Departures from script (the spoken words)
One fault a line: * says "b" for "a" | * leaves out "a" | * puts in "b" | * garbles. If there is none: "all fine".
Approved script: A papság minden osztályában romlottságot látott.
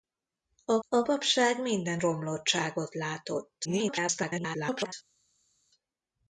* puts in "a"
* leaves out "osztályában"
* garbles